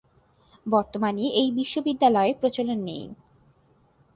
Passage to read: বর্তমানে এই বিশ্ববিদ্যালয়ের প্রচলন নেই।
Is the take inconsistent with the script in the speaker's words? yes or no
no